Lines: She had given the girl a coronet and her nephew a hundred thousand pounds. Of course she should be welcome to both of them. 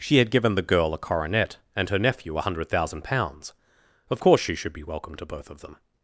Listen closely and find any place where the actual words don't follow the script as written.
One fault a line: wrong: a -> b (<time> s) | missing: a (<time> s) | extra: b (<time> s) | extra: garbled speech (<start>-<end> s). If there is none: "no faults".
no faults